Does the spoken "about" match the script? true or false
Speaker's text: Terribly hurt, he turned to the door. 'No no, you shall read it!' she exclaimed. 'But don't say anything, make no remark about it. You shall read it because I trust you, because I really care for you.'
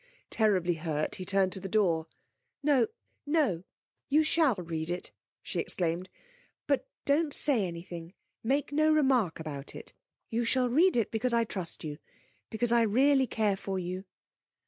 true